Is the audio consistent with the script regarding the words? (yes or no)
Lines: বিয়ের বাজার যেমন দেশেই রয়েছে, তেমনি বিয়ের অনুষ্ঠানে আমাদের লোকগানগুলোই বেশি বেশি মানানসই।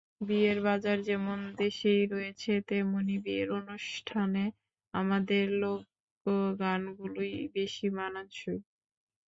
no